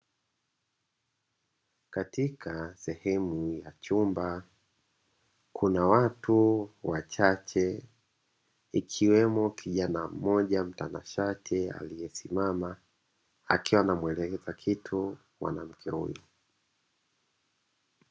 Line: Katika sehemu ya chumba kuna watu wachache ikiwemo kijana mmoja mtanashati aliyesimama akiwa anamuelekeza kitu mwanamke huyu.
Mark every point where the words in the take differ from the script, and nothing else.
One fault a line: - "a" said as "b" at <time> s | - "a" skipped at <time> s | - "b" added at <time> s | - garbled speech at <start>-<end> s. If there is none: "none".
none